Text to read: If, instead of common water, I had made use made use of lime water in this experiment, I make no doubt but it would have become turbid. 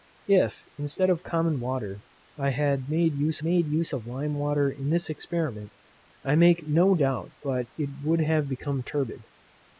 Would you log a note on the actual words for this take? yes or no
no